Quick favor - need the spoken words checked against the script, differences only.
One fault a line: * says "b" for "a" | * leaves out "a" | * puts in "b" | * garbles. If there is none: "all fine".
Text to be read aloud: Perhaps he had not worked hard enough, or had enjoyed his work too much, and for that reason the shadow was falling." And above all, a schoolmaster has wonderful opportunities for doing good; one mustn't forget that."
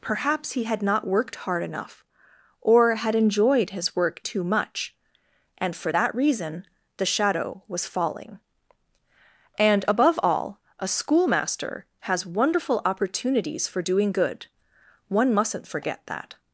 all fine